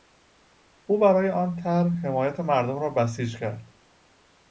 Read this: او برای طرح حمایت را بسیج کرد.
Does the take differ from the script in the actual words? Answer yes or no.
yes